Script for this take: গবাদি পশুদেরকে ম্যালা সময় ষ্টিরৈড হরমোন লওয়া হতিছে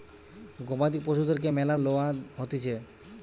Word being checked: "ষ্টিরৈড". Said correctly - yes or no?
no